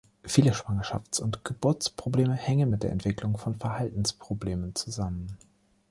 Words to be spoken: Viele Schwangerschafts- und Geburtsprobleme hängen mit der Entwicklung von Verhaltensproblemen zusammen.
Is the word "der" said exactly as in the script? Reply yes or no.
yes